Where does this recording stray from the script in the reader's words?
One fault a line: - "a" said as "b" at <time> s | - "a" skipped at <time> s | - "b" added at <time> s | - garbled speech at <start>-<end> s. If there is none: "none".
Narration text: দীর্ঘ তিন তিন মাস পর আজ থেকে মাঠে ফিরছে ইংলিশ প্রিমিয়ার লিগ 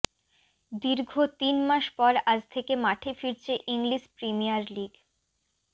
- "তিন" skipped at 1.6 s